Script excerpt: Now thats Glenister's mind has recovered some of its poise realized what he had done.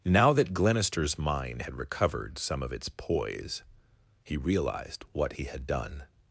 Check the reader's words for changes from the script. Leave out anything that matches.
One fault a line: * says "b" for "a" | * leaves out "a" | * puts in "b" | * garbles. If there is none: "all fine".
* says "that" for "thats"
* says "had" for "has"
* puts in "he"